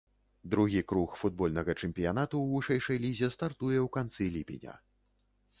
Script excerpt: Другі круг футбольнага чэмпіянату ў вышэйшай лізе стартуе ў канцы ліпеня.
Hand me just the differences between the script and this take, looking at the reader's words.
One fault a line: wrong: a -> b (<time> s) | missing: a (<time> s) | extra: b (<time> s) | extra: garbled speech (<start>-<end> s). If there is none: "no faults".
no faults